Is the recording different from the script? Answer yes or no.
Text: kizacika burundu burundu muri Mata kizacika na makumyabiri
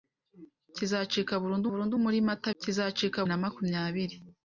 no